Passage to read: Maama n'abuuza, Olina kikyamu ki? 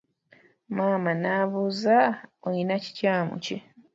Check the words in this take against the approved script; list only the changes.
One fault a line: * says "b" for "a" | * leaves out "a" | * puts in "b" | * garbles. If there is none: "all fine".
all fine